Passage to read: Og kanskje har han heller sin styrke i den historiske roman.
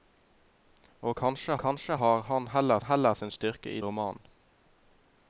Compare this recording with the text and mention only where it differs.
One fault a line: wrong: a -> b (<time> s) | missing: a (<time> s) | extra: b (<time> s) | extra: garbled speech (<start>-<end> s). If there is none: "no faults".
extra: kanskje (1.6 s)
extra: heller (2.8 s)
missing: den historiske (3.8 s)